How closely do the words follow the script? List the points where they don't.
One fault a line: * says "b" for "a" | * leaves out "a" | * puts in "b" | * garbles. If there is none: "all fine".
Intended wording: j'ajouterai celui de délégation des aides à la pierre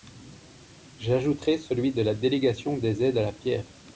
* puts in "la"